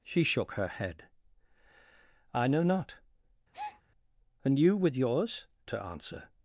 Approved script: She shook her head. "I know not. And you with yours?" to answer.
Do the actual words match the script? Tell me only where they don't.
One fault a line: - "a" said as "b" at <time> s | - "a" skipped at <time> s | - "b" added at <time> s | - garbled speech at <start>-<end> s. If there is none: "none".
none